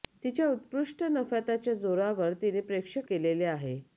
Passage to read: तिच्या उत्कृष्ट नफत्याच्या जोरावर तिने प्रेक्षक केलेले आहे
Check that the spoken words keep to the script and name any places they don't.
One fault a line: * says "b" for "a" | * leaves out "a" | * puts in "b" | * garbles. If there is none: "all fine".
all fine